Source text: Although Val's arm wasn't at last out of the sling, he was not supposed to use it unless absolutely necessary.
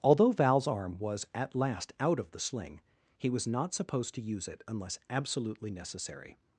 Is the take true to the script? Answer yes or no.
no